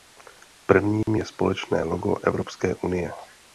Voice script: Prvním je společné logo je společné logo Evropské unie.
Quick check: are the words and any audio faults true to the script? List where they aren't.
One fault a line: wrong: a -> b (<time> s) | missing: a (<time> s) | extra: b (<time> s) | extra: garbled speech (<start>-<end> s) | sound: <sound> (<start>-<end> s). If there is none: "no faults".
sound: dropout (1.0-1.1 s)
missing: je společné logo (2.1 s)